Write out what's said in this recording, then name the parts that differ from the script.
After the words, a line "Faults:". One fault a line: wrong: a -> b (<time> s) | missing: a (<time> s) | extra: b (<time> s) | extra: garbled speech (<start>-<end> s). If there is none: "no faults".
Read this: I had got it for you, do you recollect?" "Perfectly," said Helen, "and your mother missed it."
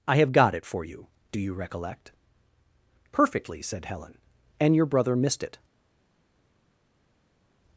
I have got it for you, do you recollect?" "Perfectly," said Helen, "and your brother missed it."
Faults:
wrong: had -> have (0.2 s)
wrong: mother -> brother (4.8 s)